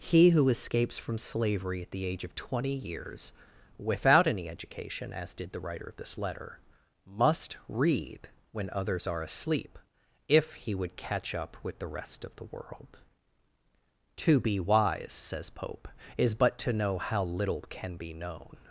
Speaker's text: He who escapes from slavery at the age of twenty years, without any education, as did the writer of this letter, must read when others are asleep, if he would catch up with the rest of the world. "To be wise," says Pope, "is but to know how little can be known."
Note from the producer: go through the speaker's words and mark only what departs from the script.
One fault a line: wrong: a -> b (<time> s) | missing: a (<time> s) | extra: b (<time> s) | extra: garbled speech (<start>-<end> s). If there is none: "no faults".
no faults